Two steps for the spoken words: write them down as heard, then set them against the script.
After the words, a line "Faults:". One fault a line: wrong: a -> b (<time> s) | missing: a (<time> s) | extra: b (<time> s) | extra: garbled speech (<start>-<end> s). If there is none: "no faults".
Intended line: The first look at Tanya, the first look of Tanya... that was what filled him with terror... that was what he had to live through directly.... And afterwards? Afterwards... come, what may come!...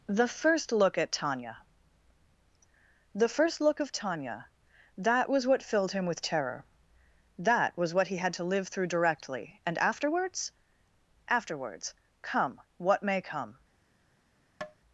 The first look at Tanya, the first look of Tanya... that was what filled him with terror... that was what he had to live through directly.... And afterwards? Afterwards... come, what may come!...
Faults:
no faults